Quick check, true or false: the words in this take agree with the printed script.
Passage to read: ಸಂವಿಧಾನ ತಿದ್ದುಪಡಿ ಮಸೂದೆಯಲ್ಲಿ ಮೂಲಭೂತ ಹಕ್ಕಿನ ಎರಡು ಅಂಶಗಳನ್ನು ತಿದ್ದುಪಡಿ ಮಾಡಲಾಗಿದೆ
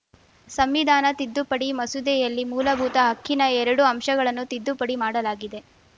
true